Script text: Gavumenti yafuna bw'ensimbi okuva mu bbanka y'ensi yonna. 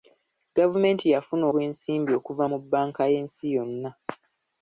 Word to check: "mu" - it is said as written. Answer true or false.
true